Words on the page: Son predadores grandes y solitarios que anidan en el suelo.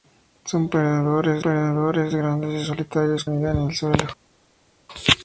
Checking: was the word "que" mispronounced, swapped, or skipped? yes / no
yes